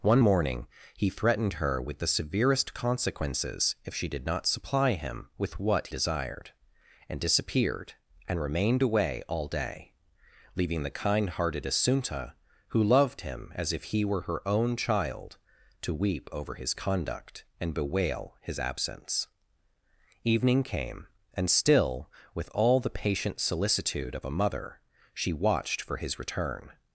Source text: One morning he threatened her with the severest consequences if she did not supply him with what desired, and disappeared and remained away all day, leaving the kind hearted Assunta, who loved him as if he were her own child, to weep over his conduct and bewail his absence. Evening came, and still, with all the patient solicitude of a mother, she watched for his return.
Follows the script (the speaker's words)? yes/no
yes